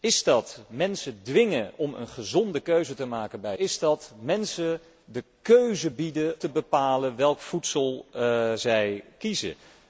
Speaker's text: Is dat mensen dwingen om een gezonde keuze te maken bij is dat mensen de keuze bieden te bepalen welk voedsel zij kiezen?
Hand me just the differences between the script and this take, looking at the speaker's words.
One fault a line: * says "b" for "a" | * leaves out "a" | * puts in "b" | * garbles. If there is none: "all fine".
all fine